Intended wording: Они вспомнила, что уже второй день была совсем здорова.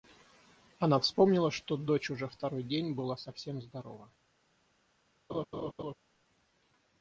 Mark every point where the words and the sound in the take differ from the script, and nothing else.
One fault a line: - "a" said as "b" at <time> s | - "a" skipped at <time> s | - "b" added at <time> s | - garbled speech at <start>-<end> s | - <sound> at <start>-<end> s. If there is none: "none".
- "Они" said as "Она" at 0.8 s
- "дочь" added at 1.8 s
- laugh at 5.3-5.9 s